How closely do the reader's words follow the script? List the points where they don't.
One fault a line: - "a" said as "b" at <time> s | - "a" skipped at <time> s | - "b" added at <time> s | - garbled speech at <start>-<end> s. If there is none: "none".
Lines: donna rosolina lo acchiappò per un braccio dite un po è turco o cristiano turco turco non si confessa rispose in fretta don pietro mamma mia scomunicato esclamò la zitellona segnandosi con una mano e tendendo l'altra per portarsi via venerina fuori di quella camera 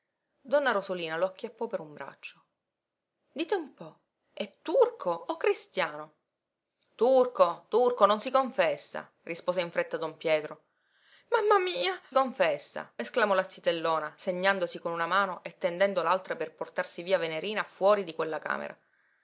- "scomunicato" said as "confessa" at 12.1 s